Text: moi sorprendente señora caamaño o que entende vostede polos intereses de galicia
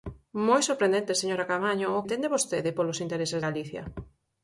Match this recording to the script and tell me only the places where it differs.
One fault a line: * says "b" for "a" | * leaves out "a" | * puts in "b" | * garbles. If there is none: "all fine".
* leaves out "que"
* leaves out "de"